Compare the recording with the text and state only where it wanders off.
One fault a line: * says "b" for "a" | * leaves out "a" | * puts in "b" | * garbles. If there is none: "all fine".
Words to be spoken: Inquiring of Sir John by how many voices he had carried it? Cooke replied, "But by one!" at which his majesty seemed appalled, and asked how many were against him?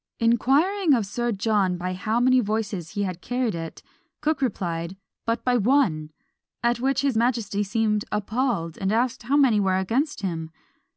all fine